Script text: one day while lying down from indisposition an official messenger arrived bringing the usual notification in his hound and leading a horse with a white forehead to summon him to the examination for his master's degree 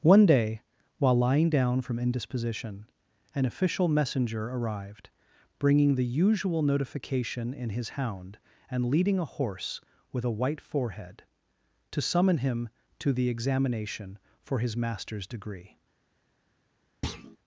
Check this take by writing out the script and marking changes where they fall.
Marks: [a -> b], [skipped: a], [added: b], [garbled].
one day while lying down from indisposition an official messenger arrived bringing the usual notification in his hound and leading a horse with a white forehead to summon him to the examination for his master's degree